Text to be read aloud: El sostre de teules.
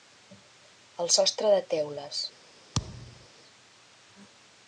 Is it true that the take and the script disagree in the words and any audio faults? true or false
true